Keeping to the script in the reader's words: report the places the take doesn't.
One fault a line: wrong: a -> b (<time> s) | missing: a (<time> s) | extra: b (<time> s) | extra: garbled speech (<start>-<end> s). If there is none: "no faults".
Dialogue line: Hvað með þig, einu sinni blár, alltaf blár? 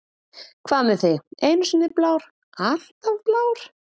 no faults